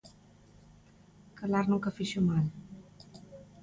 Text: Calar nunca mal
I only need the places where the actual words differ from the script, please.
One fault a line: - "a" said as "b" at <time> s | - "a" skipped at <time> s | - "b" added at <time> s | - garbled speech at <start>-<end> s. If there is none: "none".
- "fixo" added at 1.9 s